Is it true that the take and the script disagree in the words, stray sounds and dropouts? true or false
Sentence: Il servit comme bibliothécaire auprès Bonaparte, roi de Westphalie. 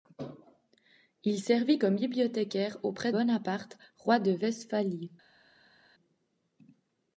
false